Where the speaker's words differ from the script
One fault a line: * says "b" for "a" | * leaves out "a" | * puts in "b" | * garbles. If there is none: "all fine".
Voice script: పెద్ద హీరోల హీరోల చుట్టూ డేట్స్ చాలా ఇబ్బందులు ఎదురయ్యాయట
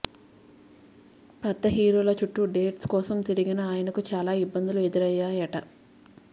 * leaves out "హీరోల"
* puts in "కోసం తిరిగిన ఆయనకు"